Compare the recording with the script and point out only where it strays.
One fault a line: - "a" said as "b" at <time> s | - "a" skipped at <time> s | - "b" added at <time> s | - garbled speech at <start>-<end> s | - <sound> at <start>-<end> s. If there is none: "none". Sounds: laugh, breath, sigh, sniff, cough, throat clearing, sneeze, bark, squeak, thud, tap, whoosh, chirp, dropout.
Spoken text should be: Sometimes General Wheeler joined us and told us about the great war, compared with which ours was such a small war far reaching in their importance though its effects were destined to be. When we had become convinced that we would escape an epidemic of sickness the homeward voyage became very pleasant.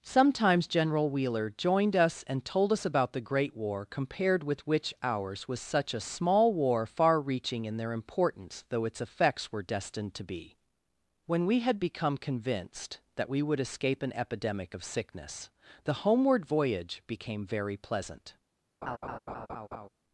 - laugh at 18.8-19.9 s